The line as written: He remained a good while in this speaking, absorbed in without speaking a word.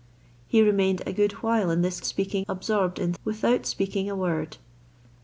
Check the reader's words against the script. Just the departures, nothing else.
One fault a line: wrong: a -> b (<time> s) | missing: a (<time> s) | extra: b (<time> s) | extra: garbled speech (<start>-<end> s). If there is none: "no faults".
no faults